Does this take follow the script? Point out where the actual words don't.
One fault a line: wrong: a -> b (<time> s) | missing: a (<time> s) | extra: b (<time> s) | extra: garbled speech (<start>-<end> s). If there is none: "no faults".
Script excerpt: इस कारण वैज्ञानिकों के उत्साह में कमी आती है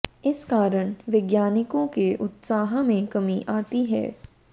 no faults